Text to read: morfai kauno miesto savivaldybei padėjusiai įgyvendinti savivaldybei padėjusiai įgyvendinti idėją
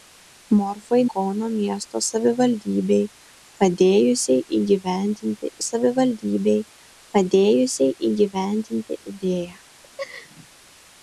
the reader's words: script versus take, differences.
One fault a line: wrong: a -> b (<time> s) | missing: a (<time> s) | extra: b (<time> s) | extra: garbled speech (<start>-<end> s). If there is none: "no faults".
no faults